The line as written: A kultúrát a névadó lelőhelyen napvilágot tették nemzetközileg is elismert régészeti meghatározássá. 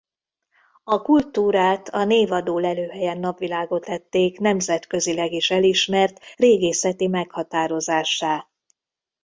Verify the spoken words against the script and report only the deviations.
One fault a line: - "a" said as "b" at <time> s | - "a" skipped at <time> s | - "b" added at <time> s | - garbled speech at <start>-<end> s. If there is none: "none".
none